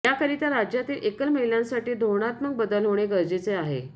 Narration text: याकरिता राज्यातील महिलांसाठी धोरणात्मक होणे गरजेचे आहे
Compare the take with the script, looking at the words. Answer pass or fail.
fail